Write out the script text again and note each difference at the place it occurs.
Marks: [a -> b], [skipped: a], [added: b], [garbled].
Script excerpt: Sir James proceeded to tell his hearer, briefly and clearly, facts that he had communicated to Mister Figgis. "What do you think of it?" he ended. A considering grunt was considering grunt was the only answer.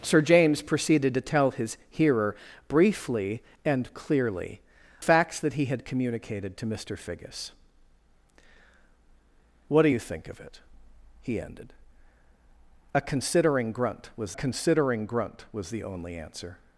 Sir James proceeded to tell his hearer, briefly and clearly, facts that he had communicated to Mister Figgis. "What do you think of it?" he ended. A considering grunt was considering grunt was the only answer.